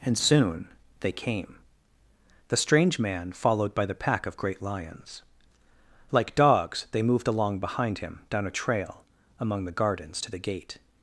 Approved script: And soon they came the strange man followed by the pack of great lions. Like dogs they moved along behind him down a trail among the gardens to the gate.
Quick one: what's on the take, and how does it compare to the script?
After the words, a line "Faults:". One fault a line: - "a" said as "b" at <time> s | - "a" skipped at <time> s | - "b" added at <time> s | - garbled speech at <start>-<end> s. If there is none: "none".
And soon they came the strange man followed by the pack of great lions. Like dogs they moved along behind him down a trail among the gardens to the gate.
Faults:
none